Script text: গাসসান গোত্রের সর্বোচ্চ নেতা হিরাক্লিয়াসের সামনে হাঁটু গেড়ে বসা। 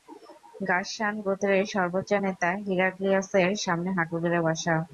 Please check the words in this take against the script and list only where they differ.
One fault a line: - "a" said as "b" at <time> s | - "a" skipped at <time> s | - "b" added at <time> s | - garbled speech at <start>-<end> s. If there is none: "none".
none